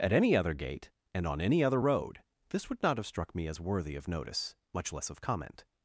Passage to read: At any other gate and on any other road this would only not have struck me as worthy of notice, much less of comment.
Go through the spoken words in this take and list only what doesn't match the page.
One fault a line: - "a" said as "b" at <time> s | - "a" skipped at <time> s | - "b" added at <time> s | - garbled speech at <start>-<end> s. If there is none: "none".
- "only" skipped at 2.8 s